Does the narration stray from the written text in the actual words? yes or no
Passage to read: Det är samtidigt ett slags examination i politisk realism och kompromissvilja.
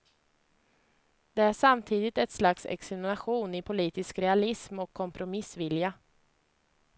no